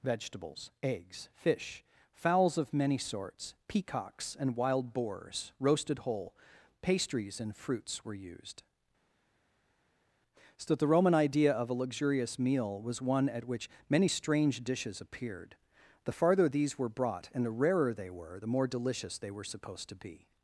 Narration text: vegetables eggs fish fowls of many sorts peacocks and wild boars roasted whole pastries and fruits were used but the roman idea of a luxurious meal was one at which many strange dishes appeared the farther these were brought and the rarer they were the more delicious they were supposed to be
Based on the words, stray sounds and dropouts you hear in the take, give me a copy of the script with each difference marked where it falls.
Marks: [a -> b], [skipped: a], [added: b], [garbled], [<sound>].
vegetables eggs fish fowls of many sorts peacocks and wild boars roasted whole pastries and fruits were used [but -> so that] the roman idea of a luxurious meal was one at which many strange dishes appeared the farther these were brought and the rarer they were the more delicious they were supposed to be